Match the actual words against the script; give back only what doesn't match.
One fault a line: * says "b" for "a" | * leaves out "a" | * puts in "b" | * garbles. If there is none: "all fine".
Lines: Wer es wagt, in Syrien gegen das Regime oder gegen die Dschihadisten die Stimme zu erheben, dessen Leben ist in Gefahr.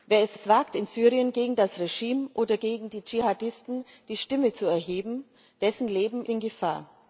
* puts in "es"
* leaves out "ist"